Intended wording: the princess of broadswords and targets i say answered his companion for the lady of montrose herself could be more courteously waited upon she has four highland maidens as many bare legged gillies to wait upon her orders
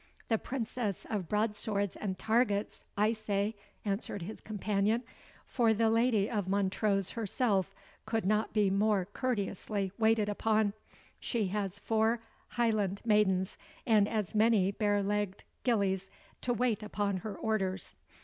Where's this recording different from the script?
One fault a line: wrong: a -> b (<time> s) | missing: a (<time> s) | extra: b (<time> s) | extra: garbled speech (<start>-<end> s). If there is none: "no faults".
extra: not (8.2 s)
extra: and (13.8 s)